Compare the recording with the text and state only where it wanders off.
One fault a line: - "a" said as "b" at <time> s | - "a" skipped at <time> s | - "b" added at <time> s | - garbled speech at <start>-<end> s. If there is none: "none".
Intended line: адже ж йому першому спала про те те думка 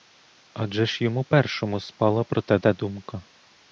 none